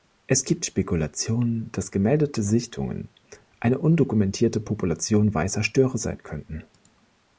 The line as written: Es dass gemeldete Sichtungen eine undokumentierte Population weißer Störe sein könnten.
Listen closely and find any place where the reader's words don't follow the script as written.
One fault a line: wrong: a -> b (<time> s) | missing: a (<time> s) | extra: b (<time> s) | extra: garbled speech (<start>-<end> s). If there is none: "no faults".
extra: gibt Spekulationen (0.5 s)